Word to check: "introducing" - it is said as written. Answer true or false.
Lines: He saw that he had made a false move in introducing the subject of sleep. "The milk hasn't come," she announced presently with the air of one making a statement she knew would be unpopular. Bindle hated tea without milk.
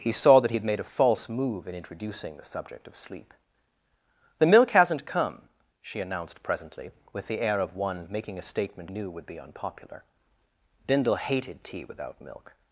true